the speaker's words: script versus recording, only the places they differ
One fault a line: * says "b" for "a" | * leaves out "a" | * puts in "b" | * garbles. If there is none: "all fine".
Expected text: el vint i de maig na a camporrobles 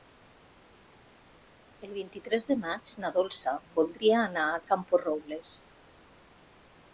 * puts in "tres"
* puts in "dolça voldria anar"